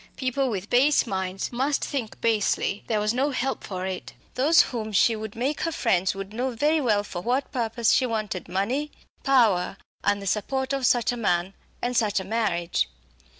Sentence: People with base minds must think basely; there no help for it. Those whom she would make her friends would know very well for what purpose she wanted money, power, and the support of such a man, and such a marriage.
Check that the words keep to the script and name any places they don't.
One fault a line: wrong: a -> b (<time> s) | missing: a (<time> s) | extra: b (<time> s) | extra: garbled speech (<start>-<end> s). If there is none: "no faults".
extra: was (3.0 s)